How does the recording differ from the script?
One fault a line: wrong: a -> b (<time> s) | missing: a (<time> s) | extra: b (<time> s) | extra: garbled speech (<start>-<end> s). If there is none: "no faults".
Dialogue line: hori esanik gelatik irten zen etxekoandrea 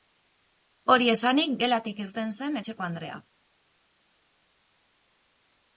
no faults